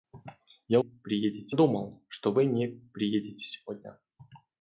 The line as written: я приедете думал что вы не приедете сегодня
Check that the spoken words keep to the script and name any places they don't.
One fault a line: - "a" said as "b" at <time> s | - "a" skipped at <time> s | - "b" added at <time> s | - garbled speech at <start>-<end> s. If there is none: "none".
none